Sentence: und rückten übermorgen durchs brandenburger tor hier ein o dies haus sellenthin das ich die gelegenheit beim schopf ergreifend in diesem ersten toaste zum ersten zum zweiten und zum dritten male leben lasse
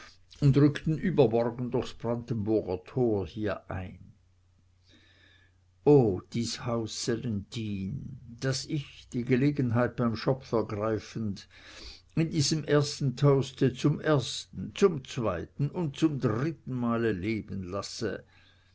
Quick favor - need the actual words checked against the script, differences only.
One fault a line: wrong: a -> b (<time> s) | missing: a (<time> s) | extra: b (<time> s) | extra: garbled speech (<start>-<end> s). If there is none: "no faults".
no faults